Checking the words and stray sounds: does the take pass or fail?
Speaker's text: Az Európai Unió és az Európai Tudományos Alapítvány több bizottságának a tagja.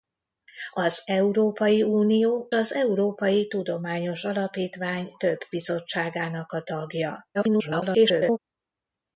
fail